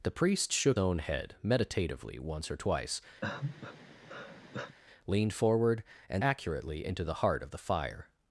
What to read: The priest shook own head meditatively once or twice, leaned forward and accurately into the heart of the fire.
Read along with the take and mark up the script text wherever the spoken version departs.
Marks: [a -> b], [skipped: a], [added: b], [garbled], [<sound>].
The priest shook own head meditatively once or twice, [sigh] leaned forward and accurately into the heart of the fire.